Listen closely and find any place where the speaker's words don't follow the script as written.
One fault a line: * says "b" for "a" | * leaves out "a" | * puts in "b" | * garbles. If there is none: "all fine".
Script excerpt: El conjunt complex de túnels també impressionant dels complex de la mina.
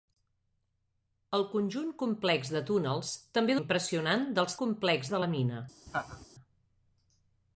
all fine